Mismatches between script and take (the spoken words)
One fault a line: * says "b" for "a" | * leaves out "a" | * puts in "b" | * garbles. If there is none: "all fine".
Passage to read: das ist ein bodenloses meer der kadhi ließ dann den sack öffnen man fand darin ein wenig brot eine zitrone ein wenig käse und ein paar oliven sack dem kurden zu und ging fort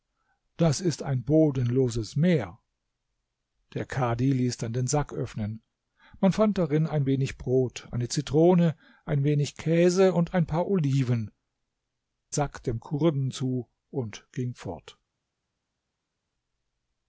all fine